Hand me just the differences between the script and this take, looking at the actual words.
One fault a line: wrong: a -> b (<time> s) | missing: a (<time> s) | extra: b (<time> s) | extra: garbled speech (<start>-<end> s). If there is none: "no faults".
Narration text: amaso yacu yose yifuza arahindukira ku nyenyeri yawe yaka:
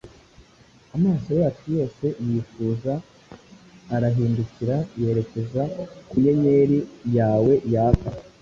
extra: yerekeza (5.0 s)